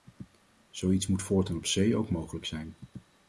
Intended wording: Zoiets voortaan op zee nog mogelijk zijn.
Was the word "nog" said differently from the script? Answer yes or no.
yes